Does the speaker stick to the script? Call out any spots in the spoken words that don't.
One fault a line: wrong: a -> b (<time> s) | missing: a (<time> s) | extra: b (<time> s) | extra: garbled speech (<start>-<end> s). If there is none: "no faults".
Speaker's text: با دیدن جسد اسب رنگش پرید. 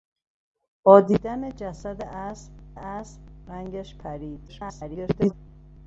extra: اسب (2.7 s)
extra: garbled speech (4.5-5.3 s)